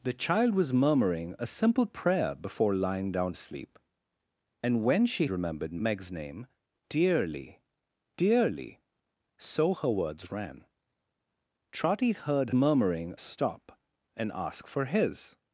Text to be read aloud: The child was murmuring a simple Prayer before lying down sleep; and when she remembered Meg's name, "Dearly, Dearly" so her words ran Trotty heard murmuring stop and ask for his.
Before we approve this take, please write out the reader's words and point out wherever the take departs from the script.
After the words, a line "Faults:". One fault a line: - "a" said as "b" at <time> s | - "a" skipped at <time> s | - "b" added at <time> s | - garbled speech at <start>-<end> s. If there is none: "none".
The child was murmuring a simple Prayer before lying down sleep; and when she remembered Meg's name, "Dearly, Dearly" so her words ran Trotty heard murmuring stop and ask for his.
Faults:
none